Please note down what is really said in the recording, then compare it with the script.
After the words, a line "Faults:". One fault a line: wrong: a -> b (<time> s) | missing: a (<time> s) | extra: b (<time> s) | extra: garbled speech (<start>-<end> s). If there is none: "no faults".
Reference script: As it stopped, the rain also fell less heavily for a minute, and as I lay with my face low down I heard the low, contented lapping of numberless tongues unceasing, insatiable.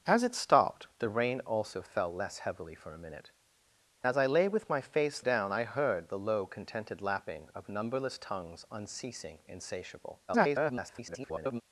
As it stopped, the rain also fell less heavily for a minute, as I lay with my face down I heard the low, contented lapping of numberless tongues unceasing, insatiable. [garbled]
Faults:
missing: and (3.3 s)
missing: low (5.2 s)
extra: garbled speech (10.3-11.6 s)